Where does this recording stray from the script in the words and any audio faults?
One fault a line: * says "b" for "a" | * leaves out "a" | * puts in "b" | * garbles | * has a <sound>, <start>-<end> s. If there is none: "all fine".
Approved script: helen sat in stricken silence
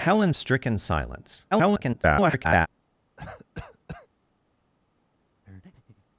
* leaves out "sat in"
* garbles
* has a cough, 3.2-4.1 s
* has a breath, 5.4-6.1 s